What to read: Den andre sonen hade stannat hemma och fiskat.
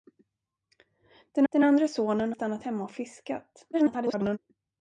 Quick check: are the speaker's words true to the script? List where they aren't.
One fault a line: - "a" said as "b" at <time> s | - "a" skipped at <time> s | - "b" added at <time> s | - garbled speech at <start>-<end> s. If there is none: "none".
- "den" added at 1.5 s
- "hade" skipped at 2.3 s
- garbled speech at 3.7-4.4 s